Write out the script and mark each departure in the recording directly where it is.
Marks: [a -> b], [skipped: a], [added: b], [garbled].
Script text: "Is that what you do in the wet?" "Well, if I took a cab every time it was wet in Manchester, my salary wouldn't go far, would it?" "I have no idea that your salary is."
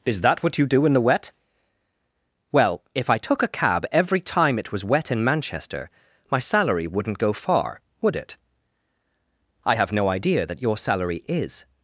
"Is that what you do in the wet?" "Well, if I took a cab every time it was wet in Manchester, my salary wouldn't go far, would it?" "I have no idea that your salary is."